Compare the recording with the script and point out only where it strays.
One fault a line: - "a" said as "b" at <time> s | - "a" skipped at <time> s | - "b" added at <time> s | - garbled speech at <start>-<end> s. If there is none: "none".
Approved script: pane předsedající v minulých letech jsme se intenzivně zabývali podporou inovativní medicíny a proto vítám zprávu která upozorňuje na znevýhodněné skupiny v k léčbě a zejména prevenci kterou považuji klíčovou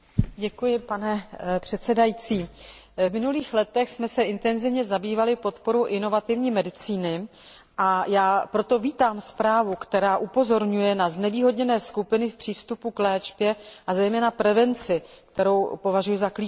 - "já" added at 8.1 s
- "přístupu" added at 12.4 s
- "za" added at 16.2 s